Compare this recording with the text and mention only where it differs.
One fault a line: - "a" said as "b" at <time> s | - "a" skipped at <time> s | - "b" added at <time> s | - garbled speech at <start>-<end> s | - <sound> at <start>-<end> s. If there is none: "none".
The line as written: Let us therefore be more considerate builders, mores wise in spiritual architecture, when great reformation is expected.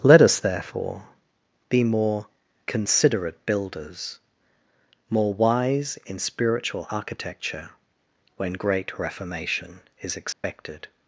- "mores" said as "more" at 5.1 s
- dropout at 10.3-10.4 s